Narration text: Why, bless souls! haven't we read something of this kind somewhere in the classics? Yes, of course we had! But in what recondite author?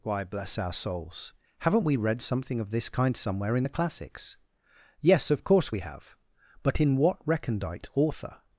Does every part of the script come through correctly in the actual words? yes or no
no